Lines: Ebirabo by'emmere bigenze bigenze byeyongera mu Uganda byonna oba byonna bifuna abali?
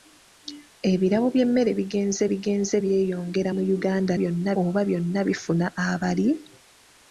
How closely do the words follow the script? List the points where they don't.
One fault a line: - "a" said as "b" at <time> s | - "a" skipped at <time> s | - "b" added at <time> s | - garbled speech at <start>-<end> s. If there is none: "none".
none